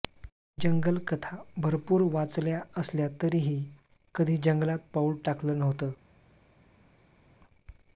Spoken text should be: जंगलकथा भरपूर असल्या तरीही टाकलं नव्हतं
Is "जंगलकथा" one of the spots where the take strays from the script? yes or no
no